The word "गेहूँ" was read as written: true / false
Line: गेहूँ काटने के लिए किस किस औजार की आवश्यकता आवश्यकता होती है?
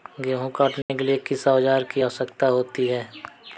true